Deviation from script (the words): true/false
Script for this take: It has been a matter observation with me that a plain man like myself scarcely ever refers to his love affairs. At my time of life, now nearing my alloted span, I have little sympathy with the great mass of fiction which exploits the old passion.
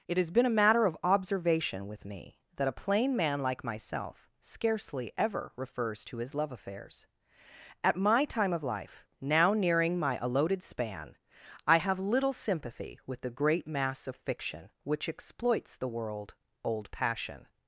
true